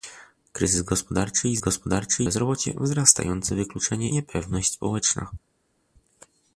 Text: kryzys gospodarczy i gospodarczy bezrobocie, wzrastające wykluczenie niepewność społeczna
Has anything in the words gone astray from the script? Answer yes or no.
no